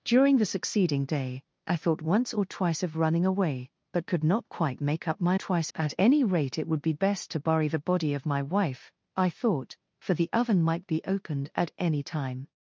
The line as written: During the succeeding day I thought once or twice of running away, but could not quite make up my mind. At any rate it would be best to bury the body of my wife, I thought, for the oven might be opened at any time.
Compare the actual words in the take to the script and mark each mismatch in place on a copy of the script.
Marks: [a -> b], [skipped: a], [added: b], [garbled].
During the succeeding day I thought once or twice of running away, but could not quite make up my [mind. -> twice] At any rate it would be best to bury the body of my wife, I thought, for the oven might be opened at any time.